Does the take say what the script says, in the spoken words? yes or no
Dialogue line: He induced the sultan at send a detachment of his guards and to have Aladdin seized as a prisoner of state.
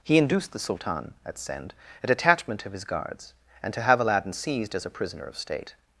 yes